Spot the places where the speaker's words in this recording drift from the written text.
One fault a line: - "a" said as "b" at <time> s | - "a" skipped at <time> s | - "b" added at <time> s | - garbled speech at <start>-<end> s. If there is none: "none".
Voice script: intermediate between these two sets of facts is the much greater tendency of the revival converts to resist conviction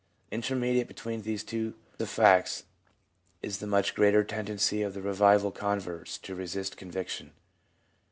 - "sets" skipped at 1.8 s